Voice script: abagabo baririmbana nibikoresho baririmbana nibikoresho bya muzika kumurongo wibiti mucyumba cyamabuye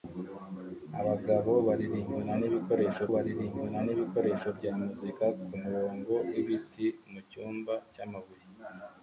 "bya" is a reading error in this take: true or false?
false